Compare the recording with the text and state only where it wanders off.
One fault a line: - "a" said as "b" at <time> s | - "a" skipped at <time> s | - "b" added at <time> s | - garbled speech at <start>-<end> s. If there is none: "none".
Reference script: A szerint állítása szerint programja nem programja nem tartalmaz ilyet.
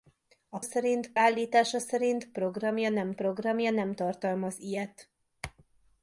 none